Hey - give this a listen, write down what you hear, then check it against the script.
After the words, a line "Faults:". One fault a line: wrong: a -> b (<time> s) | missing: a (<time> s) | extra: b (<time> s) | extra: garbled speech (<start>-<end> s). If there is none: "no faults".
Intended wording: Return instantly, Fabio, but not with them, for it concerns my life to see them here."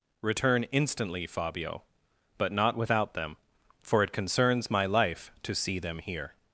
Return instantly, Fabio, but not without them, for it concerns my life to see them here."
Faults:
wrong: with -> without (2.8 s)